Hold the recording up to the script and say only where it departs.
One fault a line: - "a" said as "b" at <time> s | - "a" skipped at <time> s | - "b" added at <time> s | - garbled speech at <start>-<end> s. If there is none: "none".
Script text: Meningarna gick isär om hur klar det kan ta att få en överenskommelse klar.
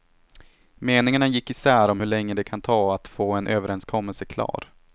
- "klar" said as "länge" at 2.1 s